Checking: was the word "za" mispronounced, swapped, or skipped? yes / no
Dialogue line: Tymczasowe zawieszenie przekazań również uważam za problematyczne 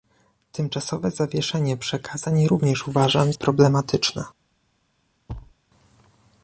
yes